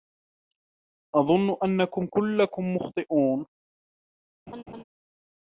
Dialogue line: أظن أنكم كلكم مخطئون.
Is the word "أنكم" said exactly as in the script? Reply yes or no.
yes